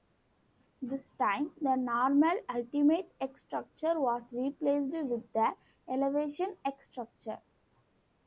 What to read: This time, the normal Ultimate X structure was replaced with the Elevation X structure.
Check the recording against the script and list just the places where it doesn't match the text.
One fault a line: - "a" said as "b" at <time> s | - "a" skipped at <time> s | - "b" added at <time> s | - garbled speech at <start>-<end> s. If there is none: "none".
none